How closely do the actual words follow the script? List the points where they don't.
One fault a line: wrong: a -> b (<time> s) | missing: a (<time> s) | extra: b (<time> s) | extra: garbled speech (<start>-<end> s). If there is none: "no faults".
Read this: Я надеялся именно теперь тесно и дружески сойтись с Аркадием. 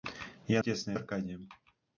missing: надеялся именно теперь (0.6 s)
missing: дружески сойтись (1.0 s)